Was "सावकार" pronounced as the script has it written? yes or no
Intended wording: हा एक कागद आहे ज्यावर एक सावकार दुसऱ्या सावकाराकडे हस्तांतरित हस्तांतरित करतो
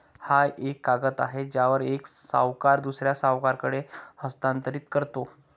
yes